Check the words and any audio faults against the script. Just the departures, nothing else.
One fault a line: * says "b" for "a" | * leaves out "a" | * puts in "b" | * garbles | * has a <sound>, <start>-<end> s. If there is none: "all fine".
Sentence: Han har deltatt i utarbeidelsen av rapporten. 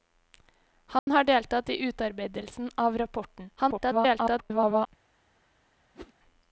* has a dropout, 1.0-1.1 s
* garbles
* has a whoosh, 5.9-6.1 s